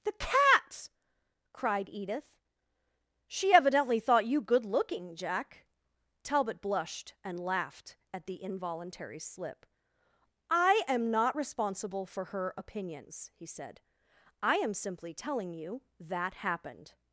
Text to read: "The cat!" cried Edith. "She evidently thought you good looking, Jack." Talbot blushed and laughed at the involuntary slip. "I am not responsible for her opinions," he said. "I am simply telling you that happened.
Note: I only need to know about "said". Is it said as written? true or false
true